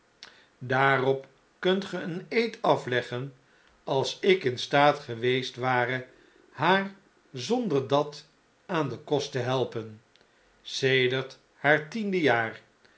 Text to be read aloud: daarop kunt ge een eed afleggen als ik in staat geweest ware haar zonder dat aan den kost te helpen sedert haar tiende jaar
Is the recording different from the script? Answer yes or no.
no